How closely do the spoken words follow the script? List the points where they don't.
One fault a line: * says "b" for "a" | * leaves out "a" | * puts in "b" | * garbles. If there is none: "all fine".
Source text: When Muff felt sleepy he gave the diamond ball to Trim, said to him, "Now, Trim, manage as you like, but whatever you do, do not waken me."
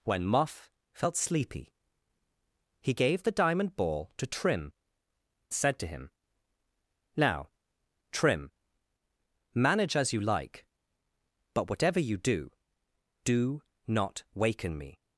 all fine